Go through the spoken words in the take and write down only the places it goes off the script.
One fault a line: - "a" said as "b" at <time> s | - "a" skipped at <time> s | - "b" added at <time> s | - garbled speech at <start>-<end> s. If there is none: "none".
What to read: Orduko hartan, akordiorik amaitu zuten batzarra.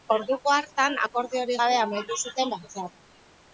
- "gabe" added at 1.6 s